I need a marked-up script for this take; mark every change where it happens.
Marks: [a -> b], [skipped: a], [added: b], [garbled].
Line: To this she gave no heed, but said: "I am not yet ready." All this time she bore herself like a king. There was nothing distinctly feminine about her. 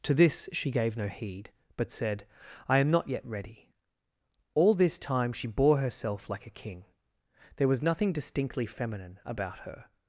To this she gave no heed, but said: "I am not yet ready." All this time she bore herself like a king. There was nothing distinctly feminine about her.